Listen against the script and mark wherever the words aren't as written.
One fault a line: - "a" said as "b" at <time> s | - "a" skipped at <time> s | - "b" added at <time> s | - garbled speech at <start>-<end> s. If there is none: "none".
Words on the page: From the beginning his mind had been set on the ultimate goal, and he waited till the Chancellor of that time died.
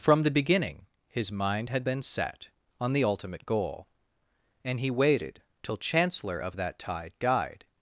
- "the" skipped at 5.8 s
- "time" said as "tide" at 6.8 s